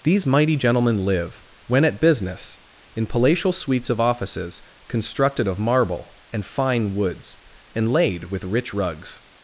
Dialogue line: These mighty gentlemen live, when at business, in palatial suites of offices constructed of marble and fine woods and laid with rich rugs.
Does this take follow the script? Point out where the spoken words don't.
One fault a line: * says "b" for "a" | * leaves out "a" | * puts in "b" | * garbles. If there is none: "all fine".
all fine